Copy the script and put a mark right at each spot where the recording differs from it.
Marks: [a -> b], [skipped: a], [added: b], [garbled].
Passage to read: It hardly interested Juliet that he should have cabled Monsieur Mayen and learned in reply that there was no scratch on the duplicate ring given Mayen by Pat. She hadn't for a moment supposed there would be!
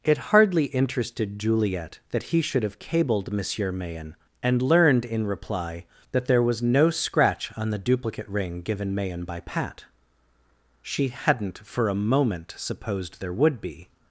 It hardly interested Juliet that he should have cabled Monsieur Mayen and learned in reply that there was no scratch on the duplicate ring given Mayen by Pat. She hadn't for a moment supposed there would be!